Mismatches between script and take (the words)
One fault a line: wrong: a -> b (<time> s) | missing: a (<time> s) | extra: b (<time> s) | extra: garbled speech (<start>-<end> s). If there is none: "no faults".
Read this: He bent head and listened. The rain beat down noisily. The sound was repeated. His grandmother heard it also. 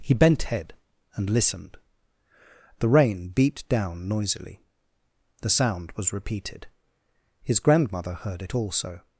no faults